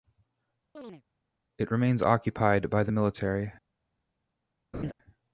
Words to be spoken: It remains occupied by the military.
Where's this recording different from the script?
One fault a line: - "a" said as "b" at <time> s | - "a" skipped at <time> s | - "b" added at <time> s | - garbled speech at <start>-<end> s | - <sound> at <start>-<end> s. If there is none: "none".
- chirp at 0.7-1.0 s
- laugh at 4.7-4.9 s